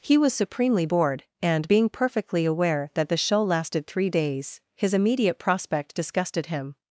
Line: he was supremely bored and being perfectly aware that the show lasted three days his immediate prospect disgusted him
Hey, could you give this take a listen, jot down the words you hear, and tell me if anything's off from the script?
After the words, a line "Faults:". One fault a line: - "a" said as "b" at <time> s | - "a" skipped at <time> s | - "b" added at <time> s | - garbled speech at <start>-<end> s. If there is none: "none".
he was supremely bored and being perfectly aware that the show lasted three days his immediate prospect disgusted him
Faults:
none